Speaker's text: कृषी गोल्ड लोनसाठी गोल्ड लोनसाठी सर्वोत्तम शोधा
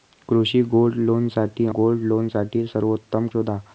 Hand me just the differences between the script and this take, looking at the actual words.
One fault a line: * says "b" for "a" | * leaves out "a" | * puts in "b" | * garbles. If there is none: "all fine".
all fine